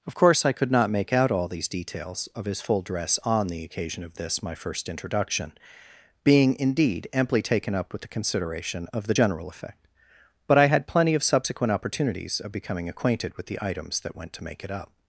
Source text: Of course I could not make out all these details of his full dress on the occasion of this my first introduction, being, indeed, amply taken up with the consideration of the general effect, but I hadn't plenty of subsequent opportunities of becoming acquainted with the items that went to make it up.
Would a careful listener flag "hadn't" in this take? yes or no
yes